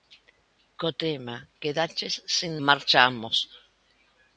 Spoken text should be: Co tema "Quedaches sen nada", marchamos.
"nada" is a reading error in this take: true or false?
true